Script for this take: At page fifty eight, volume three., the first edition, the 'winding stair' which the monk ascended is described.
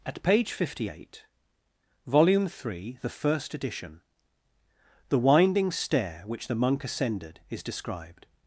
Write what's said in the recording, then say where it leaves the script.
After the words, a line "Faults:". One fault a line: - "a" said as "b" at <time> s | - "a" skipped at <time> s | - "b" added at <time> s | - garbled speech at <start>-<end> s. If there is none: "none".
At page fifty eight, volume three., the first edition, the 'winding stair' which the monk ascended is described.
Faults:
none